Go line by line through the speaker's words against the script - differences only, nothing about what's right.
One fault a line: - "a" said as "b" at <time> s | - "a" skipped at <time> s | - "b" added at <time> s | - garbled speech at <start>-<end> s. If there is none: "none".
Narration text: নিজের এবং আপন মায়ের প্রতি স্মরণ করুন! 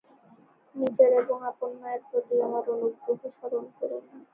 - "আমার অনুগ্রহ" added at 2.5 s